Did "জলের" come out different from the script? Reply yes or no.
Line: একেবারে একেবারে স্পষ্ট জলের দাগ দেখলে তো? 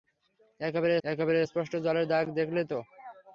no